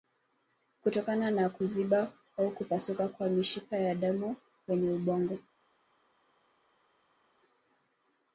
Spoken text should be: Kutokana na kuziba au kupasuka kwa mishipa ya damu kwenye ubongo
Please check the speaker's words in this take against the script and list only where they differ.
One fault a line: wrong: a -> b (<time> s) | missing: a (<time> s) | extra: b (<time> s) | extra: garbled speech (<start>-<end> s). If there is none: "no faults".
no faults